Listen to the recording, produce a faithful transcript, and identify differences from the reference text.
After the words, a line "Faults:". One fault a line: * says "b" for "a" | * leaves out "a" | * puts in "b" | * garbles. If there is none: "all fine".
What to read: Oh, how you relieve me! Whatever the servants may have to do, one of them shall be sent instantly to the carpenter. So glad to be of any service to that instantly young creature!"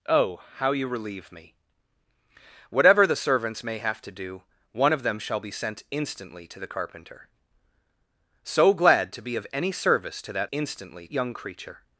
Oh, how you relieve me! Whatever the servants may have to do, one of them shall be sent instantly to the carpenter. So glad to be of any service to that instantly young creature!"
Faults:
all fine